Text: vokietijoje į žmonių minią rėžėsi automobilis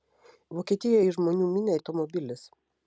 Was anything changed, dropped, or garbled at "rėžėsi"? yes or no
yes